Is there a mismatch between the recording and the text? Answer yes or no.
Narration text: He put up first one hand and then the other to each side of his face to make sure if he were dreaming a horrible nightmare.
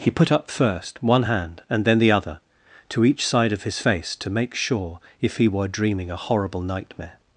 no